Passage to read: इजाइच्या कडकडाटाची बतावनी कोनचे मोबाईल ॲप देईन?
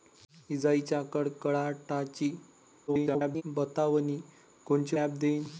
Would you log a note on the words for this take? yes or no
yes